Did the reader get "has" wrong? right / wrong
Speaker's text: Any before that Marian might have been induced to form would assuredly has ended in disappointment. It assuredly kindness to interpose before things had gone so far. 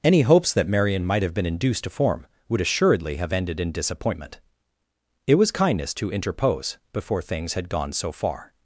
wrong